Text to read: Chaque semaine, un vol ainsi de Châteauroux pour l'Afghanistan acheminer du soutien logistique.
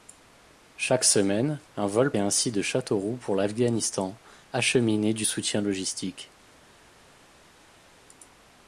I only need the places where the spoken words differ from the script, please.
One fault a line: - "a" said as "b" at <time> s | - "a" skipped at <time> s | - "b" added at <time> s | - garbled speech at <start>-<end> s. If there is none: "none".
none